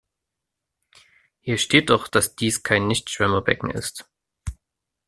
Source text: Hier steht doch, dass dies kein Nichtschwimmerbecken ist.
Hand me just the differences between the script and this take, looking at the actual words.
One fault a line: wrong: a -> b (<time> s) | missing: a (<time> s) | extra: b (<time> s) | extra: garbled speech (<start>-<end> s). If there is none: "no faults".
no faults